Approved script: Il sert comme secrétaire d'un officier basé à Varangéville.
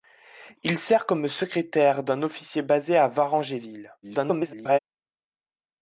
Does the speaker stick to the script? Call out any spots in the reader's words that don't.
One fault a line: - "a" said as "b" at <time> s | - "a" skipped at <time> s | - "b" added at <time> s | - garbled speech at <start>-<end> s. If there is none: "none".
- garbled speech at 4.0-4.8 s